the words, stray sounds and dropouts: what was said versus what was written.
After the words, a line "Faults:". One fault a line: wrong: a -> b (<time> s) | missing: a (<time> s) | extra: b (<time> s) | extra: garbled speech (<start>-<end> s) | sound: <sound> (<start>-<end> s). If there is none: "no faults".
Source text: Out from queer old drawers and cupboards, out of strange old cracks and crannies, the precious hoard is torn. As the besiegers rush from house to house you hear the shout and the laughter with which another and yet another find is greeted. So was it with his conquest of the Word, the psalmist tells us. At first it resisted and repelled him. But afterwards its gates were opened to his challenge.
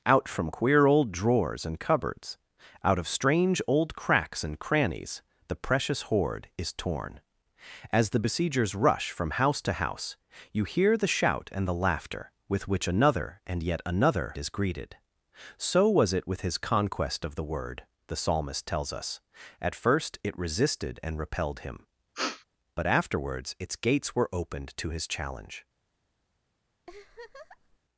Out from queer old drawers and cupboards, out of strange old cracks and crannies, the precious hoard is torn. As the besiegers rush from house to house you hear the shout and the laughter with which another and yet another is greeted. So was it with his conquest of the Word, the psalmist tells us. At first it resisted and repelled him. But afterwards its gates were opened to his challenge.
Faults:
missing: find (14.3 s)
sound: sniff (22.1-22.4 s)
sound: laugh (26.9-27.8 s)